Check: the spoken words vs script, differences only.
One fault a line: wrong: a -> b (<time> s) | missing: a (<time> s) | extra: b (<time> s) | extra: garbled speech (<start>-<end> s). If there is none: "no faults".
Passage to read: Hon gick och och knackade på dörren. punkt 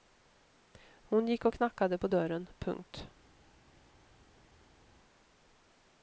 missing: och (1.6 s)